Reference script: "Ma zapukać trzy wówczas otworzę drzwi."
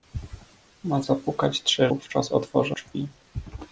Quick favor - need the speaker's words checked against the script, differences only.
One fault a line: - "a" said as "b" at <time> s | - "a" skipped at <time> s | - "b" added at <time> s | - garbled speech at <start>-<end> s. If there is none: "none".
none